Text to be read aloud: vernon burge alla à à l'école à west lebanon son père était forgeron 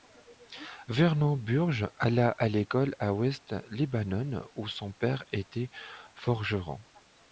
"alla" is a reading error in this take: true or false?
false